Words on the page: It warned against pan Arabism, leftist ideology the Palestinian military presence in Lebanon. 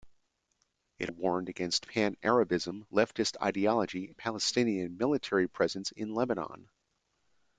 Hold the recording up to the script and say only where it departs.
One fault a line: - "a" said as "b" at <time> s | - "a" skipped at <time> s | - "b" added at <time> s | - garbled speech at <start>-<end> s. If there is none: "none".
none